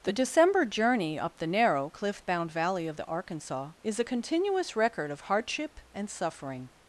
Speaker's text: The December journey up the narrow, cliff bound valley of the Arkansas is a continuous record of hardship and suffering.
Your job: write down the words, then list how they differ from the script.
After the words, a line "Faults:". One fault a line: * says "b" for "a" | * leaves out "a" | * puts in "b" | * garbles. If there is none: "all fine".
The December journey up the narrow, cliff bound valley of the Arkansas is a continuous record of hardship and suffering.
Faults:
all fine